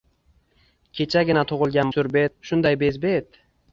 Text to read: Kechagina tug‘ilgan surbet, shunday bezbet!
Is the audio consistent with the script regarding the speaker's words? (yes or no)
yes